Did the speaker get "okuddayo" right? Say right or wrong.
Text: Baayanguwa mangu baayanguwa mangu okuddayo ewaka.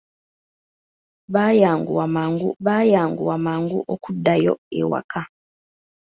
right